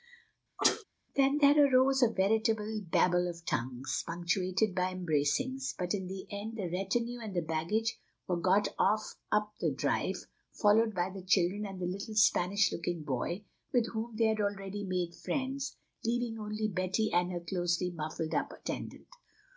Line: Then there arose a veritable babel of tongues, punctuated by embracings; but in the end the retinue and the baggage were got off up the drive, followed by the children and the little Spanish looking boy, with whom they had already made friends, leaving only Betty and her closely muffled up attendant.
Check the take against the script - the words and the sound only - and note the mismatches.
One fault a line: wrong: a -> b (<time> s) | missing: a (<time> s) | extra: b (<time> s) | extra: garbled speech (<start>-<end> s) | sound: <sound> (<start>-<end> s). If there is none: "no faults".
sound: sneeze (0.6-0.8 s)